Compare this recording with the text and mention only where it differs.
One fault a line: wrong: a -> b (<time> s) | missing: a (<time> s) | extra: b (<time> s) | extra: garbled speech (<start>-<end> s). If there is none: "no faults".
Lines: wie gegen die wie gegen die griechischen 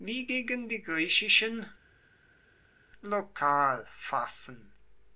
missing: wie gegen die (0.8 s)